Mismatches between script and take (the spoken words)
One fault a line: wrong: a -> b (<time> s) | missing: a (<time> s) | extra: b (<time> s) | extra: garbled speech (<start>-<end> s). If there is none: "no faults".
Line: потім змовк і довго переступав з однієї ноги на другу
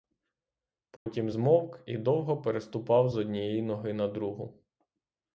no faults